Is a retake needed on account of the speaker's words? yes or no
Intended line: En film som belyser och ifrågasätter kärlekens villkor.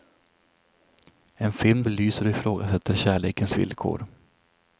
yes